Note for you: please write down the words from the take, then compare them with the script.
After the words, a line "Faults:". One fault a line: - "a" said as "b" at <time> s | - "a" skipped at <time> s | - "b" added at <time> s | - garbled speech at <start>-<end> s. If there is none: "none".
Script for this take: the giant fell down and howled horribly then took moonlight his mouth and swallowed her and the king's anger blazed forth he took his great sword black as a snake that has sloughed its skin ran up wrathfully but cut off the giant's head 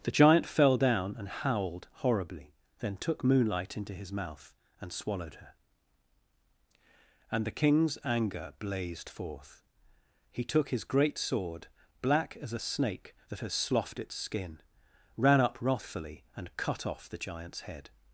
the giant fell down and howled horribly then took moonlight into his mouth and swallowed her and the king's anger blazed forth he took his great sword black as a snake that has sloughed its skin ran up wrathfully and cut off the giant's head
Faults:
- "into" added at 3.8 s
- "but" said as "and" at 16.4 s